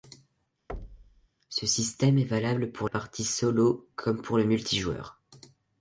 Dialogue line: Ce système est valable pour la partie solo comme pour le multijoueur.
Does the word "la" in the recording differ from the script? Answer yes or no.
yes